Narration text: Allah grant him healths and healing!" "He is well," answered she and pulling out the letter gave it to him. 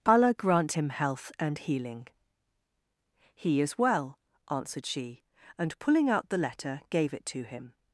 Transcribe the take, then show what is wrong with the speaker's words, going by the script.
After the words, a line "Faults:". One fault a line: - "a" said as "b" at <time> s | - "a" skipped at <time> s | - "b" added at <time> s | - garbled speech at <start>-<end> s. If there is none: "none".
Allah grant him health and healing!" "He is well," answered she and pulling out the letter gave it to him.
Faults:
- "healths" said as "health" at 0.9 s